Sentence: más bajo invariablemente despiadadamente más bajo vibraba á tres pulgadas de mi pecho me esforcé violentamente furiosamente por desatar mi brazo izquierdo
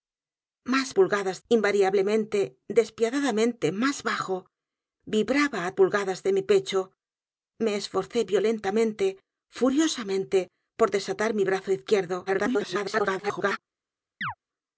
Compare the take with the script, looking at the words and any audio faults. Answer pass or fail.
fail